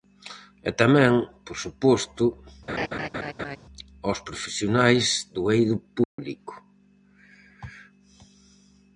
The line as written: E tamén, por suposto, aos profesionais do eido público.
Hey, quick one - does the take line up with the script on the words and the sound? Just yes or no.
no